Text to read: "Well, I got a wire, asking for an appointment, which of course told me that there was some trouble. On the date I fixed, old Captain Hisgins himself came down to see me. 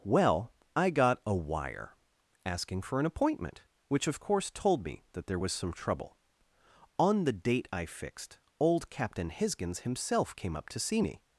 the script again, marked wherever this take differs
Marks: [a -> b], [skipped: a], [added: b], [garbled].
"Well, I got a wire, asking for an appointment, which of course told me that there was some trouble. On the date I fixed, old Captain Hisgins himself came [down -> up] to see me.